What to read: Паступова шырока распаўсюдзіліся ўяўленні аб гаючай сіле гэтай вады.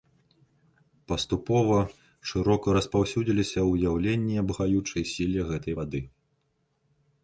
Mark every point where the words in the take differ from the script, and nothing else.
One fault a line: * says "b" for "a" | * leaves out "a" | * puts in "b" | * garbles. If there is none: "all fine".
all fine